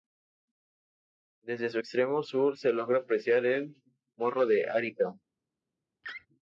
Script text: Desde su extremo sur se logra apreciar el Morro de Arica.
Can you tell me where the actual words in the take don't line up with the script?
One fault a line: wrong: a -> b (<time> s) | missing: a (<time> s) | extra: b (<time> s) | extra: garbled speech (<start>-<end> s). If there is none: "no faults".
no faults